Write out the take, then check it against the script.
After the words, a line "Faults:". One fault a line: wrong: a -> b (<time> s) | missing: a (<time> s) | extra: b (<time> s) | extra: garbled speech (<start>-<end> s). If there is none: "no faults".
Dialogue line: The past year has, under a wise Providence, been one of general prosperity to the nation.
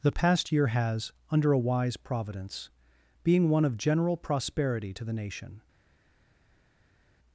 The past year has, under a wise Providence, being one of general prosperity to the nation.
Faults:
wrong: been -> being (3.2 s)